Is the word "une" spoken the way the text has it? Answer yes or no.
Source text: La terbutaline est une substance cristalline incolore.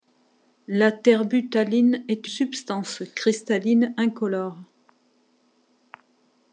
no